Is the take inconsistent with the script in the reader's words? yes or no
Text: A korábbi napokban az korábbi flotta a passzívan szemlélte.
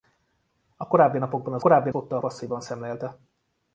no